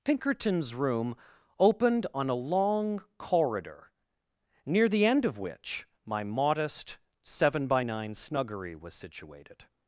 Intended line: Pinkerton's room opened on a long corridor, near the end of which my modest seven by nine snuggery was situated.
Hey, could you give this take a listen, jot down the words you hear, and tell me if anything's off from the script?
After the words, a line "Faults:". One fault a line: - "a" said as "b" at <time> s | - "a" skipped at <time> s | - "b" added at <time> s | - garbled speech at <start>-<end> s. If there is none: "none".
Pinkerton's room opened on a long corridor, near the end of which my modest seven by nine snuggery was situated.
Faults:
none